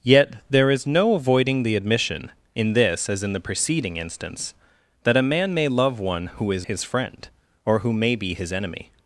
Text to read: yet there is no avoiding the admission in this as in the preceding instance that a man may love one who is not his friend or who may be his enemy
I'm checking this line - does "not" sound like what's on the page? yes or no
no